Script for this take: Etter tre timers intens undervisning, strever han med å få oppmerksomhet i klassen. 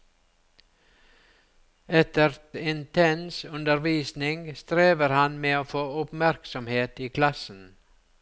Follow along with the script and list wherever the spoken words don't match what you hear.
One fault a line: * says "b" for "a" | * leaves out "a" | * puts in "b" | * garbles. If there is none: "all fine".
* leaves out "tre timers"